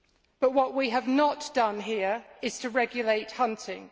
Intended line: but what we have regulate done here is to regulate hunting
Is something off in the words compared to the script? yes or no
yes